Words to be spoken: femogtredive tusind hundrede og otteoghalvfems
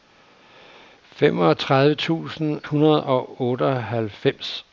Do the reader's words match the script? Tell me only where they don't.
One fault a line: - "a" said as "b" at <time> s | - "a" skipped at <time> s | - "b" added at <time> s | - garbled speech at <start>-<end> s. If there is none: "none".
none